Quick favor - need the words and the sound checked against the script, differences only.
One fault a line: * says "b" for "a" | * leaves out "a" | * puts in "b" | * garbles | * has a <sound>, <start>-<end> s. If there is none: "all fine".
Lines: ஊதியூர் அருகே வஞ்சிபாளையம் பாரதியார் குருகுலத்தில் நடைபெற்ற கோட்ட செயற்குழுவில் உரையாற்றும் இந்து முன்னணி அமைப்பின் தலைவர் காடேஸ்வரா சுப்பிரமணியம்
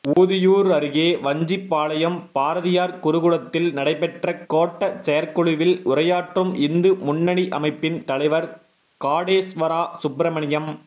* has a dropout, 0.1-0.2 s